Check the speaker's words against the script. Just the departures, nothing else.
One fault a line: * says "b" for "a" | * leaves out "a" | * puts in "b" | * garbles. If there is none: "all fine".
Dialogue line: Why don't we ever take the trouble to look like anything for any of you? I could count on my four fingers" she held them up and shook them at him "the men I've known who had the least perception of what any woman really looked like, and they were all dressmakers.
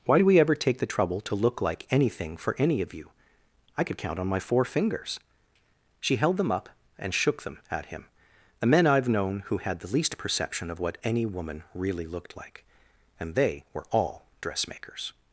* says "do" for "don't"